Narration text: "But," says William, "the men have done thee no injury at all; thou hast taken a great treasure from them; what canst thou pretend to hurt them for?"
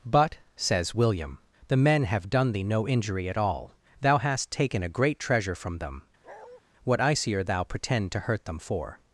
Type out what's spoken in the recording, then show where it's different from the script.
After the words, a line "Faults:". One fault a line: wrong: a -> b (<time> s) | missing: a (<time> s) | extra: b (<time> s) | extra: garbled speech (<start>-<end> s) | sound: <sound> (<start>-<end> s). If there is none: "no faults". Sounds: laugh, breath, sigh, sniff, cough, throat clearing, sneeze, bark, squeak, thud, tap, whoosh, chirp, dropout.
"But," says William, "the men have done thee no injury at all; thou hast taken a great treasure from them; what icier thou pretend to hurt them for?"
Faults:
sound: bark (6.2-6.6 s)
wrong: canst -> icier (7.0 s)